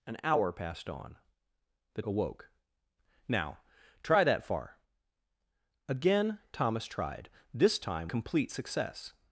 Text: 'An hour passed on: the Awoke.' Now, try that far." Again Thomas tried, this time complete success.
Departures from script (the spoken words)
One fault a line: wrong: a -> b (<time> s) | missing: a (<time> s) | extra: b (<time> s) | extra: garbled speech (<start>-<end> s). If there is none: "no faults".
no faults